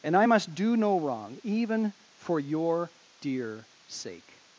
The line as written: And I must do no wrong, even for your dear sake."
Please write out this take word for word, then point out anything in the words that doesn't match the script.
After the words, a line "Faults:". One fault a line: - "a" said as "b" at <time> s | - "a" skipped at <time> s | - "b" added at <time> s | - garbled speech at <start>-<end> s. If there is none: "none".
And I must do no wrong, even for your dear sake."
Faults:
none